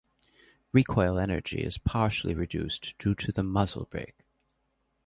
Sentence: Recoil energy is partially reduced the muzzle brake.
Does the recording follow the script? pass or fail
fail